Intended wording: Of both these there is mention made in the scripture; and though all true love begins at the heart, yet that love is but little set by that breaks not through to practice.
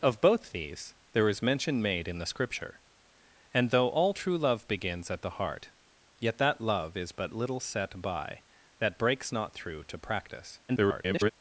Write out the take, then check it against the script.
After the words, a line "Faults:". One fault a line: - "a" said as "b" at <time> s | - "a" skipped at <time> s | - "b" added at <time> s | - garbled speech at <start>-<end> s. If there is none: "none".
Of both these there is mention made in the scripture; and though all true love begins at the heart, yet that love is but little set by that breaks not through to practice. [garbled]
Faults:
- garbled speech at 10.7-11.3 s